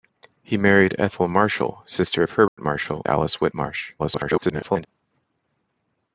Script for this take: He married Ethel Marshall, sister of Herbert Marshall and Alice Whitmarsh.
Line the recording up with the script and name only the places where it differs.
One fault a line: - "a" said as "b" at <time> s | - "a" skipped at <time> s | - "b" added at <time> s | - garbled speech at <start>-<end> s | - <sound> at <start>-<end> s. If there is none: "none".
- dropout at 2.5-2.6 s
- "and" skipped at 3.1 s
- garbled speech at 4.0-4.9 s